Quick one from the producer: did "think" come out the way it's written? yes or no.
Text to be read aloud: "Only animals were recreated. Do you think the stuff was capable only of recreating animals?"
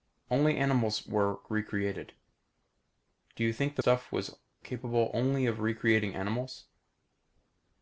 yes